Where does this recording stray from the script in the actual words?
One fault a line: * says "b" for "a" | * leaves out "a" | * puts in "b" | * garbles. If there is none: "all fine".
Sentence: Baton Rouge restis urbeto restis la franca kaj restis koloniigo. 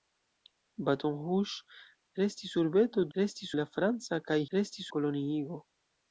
all fine